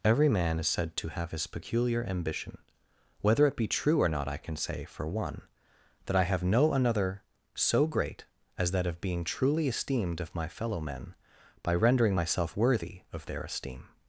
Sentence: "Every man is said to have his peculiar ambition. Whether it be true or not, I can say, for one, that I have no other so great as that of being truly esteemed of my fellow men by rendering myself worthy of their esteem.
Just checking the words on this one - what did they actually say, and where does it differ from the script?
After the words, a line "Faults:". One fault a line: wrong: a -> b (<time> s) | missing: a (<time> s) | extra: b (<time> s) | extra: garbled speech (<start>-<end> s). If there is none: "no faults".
"Every man is said to have his peculiar ambition. Whether it be true or not, I can say, for one, that I have no another so great as that of being truly esteemed of my fellow men by rendering myself worthy of their esteem.
Faults:
wrong: other -> another (6.7 s)